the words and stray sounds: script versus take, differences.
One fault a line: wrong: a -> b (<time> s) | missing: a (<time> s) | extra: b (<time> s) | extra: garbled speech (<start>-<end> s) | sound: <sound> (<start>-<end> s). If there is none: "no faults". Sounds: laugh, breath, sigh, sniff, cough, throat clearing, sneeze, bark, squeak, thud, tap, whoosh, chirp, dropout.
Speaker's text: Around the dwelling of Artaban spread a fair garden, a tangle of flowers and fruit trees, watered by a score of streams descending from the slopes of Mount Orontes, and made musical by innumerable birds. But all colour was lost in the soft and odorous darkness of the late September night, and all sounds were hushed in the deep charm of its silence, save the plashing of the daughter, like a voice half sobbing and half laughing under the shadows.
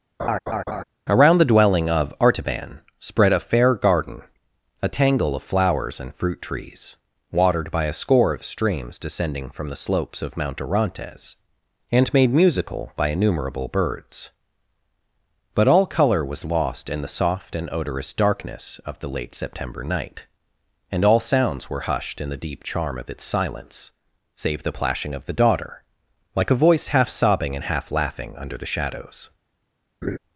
sound: laugh (0.2-0.8 s)
sound: laugh (30.0-30.2 s)